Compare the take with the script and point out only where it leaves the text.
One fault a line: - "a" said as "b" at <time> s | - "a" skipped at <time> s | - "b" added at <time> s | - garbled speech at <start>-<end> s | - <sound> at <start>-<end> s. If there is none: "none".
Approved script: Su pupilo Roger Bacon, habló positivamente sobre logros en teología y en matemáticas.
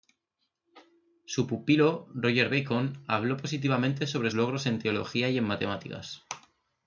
none